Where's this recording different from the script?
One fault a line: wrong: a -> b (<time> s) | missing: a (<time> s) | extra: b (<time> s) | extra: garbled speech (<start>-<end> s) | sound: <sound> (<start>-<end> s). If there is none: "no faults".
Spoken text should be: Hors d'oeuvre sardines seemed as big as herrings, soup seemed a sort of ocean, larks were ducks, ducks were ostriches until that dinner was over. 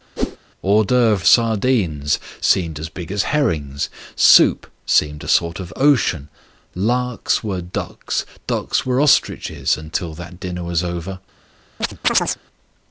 sound: whoosh (0.2-0.4 s)
sound: chirp (11.8-12.4 s)